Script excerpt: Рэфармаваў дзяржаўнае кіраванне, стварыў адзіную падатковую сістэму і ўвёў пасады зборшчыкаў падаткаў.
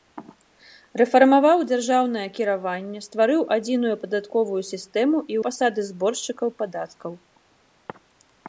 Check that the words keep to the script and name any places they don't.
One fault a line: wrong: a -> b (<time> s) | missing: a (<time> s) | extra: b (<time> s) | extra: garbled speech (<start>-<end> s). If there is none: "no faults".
missing: ўвёў (5.4 s)